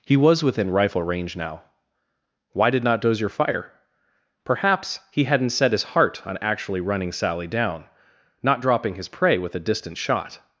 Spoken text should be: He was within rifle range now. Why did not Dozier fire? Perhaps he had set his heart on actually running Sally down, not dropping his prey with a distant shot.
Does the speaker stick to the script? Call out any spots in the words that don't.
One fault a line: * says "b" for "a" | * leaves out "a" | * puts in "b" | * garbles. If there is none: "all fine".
* says "hadn't" for "had"